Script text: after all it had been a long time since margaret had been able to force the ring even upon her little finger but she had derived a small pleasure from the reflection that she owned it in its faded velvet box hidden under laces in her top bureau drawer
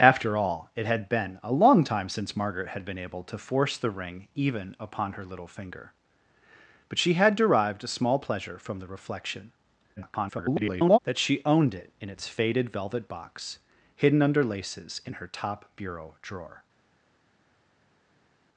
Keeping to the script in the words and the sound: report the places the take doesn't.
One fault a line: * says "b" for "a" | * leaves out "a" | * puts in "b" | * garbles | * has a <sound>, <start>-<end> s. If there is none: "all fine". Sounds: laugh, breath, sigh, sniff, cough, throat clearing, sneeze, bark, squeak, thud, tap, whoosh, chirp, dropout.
* garbles